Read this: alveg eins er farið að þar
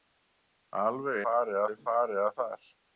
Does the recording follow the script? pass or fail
fail